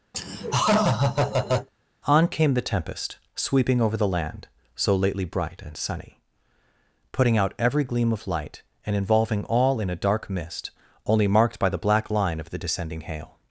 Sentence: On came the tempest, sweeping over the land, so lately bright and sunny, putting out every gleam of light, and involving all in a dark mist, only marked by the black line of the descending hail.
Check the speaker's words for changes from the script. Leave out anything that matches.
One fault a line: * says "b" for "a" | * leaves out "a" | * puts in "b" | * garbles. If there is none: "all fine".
all fine